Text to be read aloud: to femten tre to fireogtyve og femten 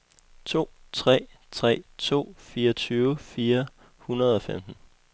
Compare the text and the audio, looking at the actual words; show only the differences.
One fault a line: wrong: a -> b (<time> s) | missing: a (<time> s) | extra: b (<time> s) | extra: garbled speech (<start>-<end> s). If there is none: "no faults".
wrong: femten -> tre (0.9 s)
extra: fire hundrede (3.2 s)